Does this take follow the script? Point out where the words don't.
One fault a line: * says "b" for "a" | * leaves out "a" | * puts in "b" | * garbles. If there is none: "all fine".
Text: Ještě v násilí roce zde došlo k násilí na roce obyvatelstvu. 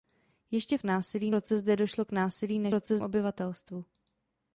all fine